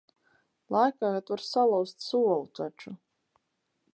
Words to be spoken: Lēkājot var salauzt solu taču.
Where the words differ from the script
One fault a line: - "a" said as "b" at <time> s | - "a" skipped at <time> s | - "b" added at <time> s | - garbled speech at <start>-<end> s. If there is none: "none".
none